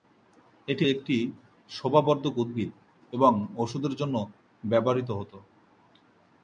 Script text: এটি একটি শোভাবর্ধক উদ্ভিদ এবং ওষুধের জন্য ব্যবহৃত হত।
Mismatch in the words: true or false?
false